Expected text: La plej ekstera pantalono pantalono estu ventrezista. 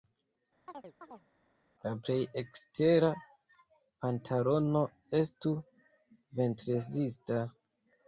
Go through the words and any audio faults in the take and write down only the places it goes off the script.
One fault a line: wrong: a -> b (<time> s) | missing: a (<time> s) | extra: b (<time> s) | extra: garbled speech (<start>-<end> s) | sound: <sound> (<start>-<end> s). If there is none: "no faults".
sound: chirp (0.7-1.3 s)
missing: pantalono (4.8 s)